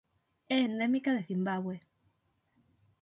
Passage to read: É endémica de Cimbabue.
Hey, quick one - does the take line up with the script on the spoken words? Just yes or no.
yes